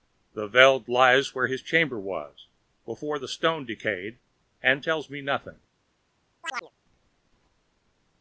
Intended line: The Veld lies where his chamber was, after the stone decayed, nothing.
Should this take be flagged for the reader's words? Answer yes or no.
yes